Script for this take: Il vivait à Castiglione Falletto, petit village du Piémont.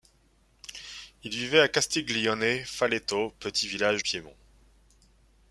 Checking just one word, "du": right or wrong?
wrong